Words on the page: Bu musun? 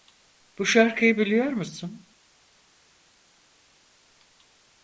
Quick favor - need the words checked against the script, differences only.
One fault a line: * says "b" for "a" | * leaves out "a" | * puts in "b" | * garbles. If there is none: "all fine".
* puts in "şarkıyı biliyor"